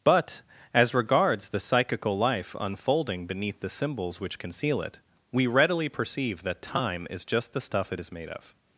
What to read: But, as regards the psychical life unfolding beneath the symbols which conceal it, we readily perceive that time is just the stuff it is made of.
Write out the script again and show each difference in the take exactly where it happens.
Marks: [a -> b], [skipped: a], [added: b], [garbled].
But, as regards the psychical life unfolding beneath the symbols which conceal it, we readily perceive that time is just the stuff it is made of.